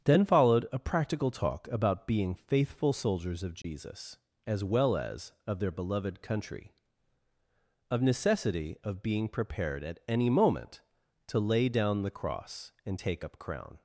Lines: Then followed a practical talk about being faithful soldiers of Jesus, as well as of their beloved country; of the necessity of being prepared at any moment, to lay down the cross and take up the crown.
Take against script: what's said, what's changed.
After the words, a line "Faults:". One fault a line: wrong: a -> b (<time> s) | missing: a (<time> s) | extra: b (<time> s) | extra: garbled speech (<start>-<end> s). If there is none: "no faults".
Then followed a practical talk about being faithful soldiers of Jesus, as well as of their beloved country; of necessity of being prepared at any moment, to lay down the cross and take up crown.
Faults:
missing: the (8.0 s)
missing: the (13.4 s)